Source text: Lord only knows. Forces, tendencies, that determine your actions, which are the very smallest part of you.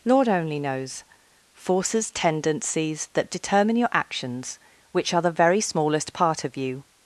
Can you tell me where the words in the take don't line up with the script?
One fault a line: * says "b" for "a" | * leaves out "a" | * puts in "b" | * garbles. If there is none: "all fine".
all fine